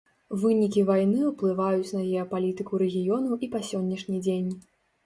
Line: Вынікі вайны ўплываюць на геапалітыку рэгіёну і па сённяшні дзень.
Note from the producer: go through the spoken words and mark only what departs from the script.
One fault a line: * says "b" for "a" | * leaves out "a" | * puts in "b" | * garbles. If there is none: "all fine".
all fine